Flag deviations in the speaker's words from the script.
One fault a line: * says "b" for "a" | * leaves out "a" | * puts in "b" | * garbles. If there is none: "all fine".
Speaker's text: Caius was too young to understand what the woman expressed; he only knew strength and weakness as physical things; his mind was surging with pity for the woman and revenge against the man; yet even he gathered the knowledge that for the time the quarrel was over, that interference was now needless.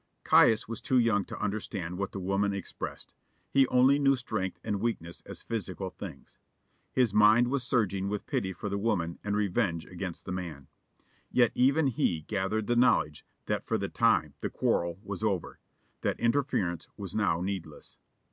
all fine